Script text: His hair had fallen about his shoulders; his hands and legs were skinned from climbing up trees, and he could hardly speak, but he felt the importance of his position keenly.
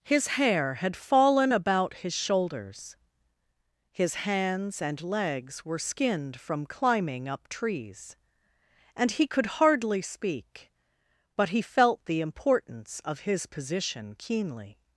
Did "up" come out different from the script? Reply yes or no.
no